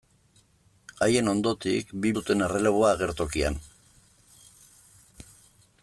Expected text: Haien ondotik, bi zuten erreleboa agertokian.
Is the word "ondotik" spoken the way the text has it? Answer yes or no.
yes